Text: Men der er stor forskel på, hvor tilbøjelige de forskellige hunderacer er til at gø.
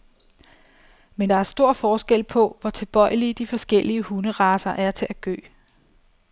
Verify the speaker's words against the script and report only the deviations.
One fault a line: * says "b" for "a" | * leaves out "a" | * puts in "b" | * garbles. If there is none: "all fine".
all fine